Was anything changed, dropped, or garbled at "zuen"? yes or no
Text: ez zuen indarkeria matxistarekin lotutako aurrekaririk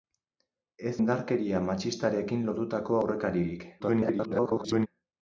yes